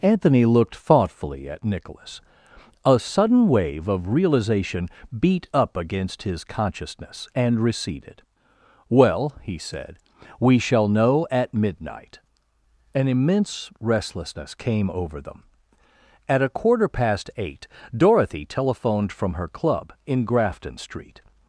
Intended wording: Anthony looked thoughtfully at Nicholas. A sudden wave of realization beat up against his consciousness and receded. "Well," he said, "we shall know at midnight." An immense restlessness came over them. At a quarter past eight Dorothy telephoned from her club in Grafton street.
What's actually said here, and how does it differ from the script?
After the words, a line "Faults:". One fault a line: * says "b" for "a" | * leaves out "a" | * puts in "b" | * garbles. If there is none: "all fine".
Anthony looked thoughtfully at Nicholas. A sudden wave of realization beat up against his consciousness and receded. "Well," he said, "we shall know at midnight." An immense restlessness came over them. At a quarter past eight Dorothy telephoned from her club in Grafton street.
Faults:
all fine